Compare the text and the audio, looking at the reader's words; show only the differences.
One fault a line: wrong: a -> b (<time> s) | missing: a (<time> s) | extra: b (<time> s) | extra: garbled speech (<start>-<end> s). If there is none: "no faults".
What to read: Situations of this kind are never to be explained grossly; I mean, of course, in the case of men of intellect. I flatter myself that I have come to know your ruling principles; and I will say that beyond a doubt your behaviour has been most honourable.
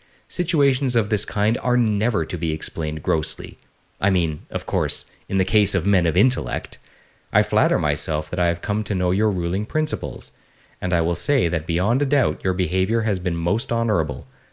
no faults